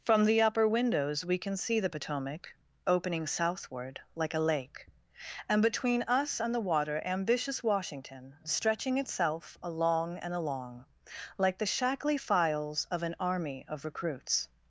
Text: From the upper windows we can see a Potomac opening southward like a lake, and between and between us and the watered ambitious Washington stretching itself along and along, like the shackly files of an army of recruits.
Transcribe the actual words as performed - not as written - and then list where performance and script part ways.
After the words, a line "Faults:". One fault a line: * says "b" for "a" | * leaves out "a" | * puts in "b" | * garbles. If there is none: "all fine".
From the upper windows we can see the Potomac opening southward like a lake, and between us and the water ambitious Washington stretching itself along and along, like the shackly files of an army of recruits.
Faults:
* says "the" for "a"
* leaves out "and between"
* says "water" for "watered"